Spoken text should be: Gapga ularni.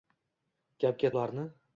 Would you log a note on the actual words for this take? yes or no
no